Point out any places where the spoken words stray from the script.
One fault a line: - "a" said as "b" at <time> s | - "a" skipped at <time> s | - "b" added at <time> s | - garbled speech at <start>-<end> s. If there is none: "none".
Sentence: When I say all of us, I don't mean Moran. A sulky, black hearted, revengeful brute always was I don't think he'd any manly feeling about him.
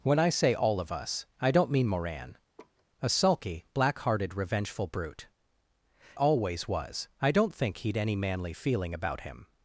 none